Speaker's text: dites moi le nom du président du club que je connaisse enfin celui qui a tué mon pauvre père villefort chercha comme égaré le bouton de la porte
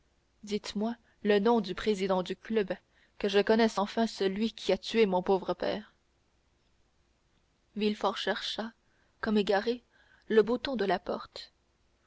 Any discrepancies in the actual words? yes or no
no